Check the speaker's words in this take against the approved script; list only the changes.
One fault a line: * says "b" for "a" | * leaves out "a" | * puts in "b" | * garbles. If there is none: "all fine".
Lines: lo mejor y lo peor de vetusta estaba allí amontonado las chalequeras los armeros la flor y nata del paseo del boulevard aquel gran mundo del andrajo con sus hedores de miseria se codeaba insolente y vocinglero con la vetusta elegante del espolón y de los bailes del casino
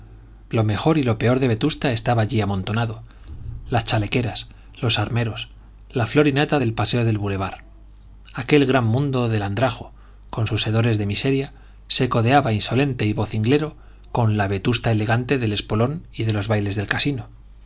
all fine